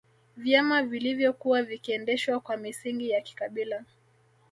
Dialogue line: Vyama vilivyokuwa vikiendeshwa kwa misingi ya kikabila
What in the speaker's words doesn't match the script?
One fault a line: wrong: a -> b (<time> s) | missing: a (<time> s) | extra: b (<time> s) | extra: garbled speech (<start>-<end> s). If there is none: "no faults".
no faults